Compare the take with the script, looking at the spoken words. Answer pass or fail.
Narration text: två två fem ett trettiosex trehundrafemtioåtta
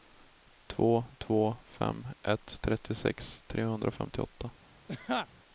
pass